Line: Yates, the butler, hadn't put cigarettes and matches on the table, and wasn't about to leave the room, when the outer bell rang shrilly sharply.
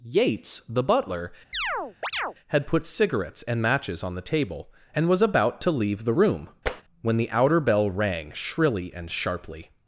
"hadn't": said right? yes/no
no